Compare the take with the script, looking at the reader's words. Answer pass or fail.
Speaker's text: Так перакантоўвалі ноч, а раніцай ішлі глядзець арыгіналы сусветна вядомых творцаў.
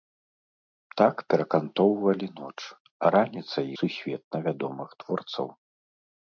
fail